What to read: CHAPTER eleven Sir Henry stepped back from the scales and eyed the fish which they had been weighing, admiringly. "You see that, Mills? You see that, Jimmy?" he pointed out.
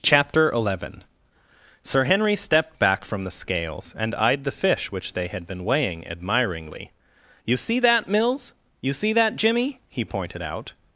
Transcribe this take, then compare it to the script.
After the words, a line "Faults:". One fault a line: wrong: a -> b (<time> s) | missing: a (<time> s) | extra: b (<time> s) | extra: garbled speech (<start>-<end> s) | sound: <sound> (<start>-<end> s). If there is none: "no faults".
CHAPTER eleven Sir Henry stepped back from the scales and eyed the fish which they had been weighing, admiringly. "You see that, Mills? You see that, Jimmy?" he pointed out.
Faults:
no faults